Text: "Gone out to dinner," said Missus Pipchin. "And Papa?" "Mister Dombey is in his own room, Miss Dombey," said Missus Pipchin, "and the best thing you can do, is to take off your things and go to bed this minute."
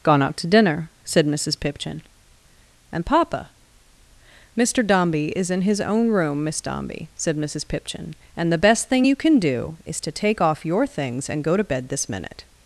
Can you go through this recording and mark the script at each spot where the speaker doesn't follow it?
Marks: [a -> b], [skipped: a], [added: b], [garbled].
"Gone out to dinner," said Missus Pipchin. "And Papa?" "Mister Dombey is in his own room, Miss Dombey," said Missus Pipchin, "and the best thing you can do, is to take off your things and go to bed this minute."